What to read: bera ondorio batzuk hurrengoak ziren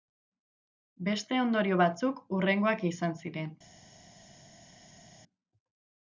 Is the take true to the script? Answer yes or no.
no